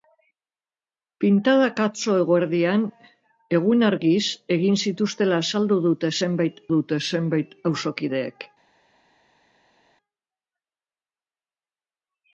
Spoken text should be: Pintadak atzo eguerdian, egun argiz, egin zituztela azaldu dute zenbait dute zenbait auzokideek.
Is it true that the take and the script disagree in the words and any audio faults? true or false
false